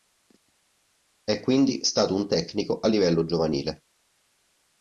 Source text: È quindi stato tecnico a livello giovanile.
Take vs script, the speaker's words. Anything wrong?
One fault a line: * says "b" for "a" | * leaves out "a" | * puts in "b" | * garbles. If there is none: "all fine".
* puts in "un"